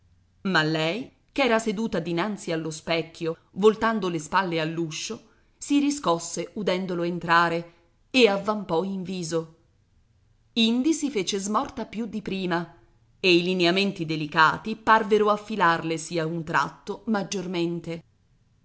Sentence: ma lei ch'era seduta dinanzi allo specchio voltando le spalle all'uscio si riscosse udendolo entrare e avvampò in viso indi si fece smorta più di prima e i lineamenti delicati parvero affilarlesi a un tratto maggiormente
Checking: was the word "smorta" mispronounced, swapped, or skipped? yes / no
no